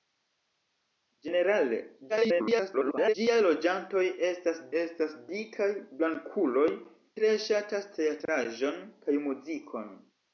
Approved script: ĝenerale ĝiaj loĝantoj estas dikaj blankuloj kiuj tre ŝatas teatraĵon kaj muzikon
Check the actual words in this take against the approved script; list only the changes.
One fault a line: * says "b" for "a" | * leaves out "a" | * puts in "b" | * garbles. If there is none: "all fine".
* garbles
* puts in "estas"
* leaves out "kiuj"